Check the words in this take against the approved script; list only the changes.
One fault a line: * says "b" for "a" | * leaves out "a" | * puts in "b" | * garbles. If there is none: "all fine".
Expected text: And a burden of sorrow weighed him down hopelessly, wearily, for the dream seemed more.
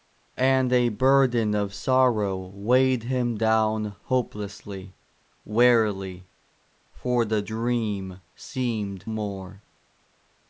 all fine